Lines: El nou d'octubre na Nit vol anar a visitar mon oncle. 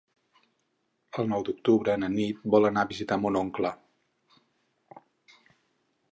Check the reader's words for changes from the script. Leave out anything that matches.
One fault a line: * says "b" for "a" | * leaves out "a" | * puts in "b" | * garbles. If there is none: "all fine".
all fine